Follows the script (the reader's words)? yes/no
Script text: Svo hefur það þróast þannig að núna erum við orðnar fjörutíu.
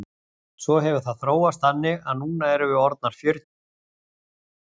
yes